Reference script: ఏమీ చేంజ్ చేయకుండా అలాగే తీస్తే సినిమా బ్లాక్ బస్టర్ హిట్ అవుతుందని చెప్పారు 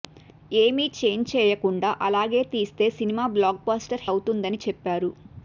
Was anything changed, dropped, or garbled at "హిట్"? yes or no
yes